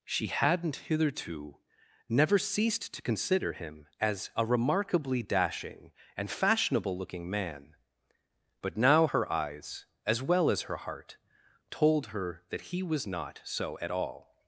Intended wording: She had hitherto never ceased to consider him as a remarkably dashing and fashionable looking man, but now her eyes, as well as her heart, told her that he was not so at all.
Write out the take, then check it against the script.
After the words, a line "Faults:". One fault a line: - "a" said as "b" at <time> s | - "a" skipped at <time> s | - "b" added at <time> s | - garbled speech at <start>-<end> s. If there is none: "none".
She hadn't hitherto never ceased to consider him as a remarkably dashing and fashionable looking man, but now her eyes, as well as her heart, told her that he was not so at all.
Faults:
- "had" said as "hadn't" at 0.3 s